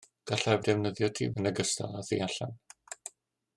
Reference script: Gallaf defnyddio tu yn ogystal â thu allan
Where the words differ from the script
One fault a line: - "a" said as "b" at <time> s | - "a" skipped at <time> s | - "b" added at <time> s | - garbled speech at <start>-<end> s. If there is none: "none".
none